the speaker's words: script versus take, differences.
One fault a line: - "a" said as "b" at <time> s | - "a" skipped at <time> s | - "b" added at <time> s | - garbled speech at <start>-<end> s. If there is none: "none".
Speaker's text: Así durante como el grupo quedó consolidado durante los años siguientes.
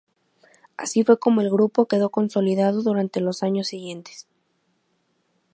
- "durante" said as "fue" at 1.0 s